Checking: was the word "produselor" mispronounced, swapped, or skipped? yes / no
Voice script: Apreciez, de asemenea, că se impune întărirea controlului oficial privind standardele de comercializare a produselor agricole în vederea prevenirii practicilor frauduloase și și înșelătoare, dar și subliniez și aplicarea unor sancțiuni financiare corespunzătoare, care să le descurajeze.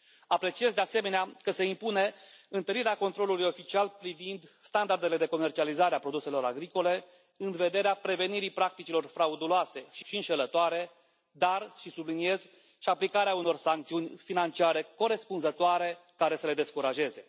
no